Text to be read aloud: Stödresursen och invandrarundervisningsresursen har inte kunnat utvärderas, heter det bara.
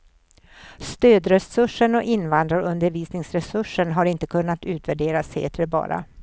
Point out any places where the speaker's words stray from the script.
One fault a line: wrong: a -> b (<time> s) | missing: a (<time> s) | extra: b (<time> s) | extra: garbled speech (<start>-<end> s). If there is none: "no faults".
no faults